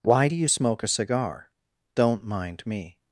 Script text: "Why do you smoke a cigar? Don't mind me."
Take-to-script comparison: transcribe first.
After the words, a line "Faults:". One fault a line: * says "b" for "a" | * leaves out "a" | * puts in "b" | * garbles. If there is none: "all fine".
"Why do you smoke a cigar? Don't mind me."
Faults:
all fine